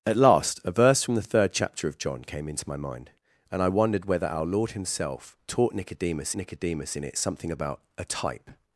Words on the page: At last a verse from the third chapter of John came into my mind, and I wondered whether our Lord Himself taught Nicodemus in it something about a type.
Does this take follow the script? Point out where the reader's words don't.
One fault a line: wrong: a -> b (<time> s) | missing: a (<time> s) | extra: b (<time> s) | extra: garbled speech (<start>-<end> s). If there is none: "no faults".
extra: Nicodemus (6.4 s)